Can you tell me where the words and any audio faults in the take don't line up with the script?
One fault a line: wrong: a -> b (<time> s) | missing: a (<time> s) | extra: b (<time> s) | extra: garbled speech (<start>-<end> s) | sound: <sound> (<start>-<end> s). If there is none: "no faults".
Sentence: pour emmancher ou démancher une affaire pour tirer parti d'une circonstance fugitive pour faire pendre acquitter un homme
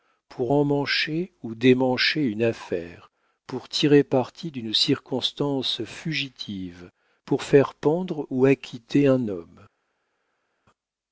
extra: ou (8.3 s)